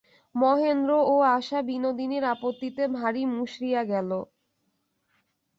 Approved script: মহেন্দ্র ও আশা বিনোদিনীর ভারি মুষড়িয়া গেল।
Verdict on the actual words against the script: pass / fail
fail